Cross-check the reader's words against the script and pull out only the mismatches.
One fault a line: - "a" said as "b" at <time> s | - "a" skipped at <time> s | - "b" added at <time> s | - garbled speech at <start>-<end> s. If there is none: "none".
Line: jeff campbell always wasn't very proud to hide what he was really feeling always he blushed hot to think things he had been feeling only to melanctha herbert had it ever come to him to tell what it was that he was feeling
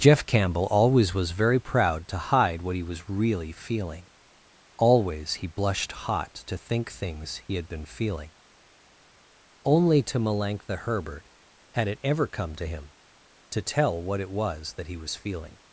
- "wasn't" said as "was" at 1.1 s